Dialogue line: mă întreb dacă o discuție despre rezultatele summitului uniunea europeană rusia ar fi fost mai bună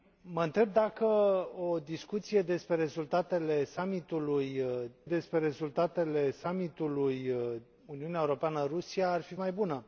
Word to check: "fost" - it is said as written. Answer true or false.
false